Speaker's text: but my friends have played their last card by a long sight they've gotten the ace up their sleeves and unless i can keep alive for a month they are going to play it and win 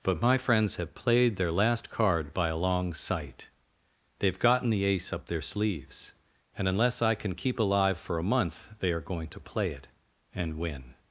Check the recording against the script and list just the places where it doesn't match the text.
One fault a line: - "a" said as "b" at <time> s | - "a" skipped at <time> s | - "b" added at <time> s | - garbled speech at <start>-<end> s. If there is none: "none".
none